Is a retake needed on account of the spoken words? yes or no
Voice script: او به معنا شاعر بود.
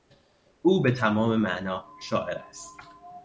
yes